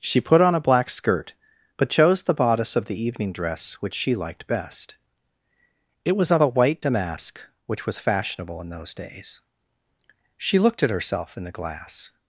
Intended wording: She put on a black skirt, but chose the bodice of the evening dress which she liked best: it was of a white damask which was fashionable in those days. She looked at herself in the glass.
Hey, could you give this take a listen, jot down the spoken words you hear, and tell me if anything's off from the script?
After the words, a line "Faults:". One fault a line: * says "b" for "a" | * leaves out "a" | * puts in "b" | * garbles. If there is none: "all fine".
She put on a black skirt, but chose the bodice of the evening dress which she liked best: it was of a white damask which was fashionable in those days. She looked at herself in the glass.
Faults:
all fine